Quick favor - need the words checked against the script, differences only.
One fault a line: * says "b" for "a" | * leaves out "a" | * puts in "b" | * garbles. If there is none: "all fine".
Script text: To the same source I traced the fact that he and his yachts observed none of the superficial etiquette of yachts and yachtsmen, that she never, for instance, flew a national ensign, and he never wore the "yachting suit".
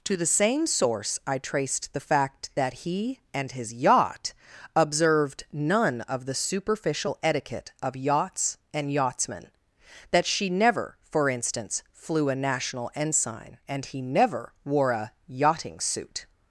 * says "yacht" for "yachts"
* says "a" for "the"